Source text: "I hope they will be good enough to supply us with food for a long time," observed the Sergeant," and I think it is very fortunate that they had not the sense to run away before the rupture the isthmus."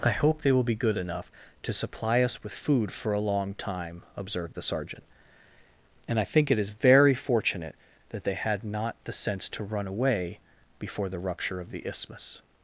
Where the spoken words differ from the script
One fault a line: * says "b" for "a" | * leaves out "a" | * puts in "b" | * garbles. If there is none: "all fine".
* puts in "of"